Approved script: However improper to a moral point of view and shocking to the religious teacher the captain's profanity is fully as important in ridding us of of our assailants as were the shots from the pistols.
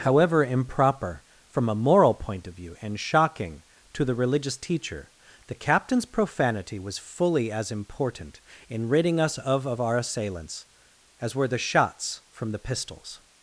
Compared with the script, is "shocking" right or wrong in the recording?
right